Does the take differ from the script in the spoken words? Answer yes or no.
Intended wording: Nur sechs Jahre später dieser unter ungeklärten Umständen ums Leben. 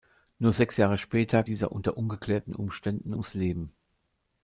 no